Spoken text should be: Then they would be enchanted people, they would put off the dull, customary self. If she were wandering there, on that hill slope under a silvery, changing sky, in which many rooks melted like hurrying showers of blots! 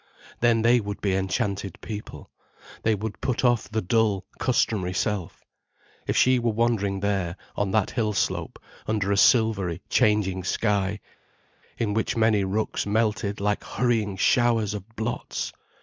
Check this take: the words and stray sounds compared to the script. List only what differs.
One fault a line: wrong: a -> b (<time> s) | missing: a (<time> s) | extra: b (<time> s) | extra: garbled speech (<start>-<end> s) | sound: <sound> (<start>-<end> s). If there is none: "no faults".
no faults